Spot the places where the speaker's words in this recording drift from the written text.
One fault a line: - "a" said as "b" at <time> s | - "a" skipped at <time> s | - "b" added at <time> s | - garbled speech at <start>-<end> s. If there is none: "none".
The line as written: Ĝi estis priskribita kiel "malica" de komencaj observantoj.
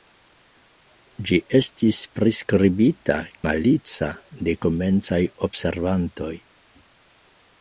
- "kiel" skipped at 3.2 s